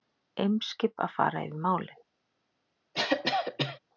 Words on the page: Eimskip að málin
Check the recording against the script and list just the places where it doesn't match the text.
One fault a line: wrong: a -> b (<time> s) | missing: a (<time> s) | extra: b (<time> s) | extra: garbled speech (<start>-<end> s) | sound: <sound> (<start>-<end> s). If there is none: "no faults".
extra: fara yfir (1.2 s)
sound: cough (2.9-3.8 s)